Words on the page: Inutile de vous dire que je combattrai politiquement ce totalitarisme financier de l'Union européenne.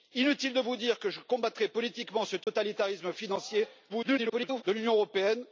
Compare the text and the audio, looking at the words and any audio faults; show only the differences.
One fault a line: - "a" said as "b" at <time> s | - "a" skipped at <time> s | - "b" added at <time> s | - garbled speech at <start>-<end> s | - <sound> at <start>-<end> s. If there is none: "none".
- dropout at 2.4-2.5 s
- garbled speech at 3.9-4.6 s